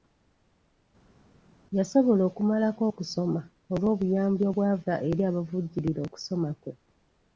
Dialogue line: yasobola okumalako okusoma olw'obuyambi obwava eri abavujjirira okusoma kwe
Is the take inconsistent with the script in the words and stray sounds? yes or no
no